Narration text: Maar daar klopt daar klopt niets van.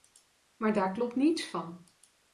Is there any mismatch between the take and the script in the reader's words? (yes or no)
yes